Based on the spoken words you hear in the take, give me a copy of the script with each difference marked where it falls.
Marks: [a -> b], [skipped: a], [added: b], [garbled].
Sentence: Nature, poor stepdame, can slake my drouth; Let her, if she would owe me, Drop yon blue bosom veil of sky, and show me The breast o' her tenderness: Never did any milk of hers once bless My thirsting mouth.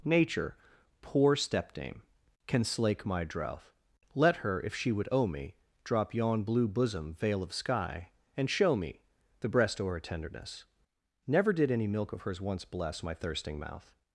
Nature, poor stepdame, can slake my drouth; Let her, if she would owe me, Drop yon blue bosom veil of sky, and show me The breast o' her tenderness: Never did any milk of hers once bless My thirsting mouth.